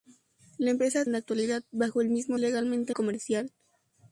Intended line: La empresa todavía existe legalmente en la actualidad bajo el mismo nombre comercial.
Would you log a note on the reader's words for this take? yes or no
yes